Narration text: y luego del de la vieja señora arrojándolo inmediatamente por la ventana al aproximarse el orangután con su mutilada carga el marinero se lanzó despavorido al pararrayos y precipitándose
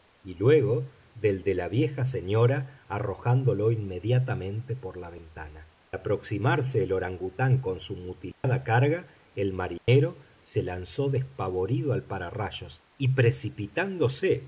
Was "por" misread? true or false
false